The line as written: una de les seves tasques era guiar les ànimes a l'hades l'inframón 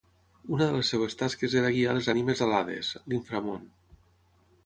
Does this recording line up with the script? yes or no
yes